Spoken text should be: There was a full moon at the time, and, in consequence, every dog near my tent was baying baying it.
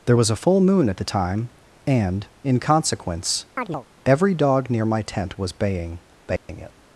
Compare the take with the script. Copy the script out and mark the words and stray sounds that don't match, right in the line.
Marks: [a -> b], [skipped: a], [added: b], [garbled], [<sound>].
There was a full moon at the time, and, in consequence, [chirp] every dog near my tent was baying baying [dropout] it.